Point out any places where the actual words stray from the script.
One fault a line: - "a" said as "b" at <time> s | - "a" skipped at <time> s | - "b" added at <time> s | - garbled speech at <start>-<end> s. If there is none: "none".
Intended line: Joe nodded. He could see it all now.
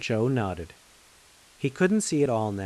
- "could" said as "couldn't" at 1.7 s